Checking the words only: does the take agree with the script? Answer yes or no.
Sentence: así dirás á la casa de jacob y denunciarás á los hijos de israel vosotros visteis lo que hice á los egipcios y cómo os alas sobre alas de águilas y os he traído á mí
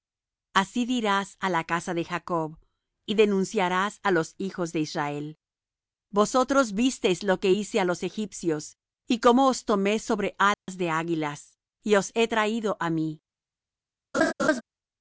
no